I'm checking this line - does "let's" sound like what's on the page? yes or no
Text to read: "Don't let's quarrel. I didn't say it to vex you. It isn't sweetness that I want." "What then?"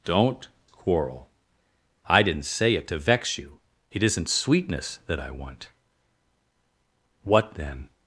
no